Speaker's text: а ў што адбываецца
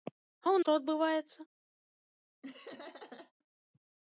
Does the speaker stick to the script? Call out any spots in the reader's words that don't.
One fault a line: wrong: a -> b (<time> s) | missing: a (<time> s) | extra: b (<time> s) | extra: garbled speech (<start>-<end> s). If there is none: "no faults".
no faults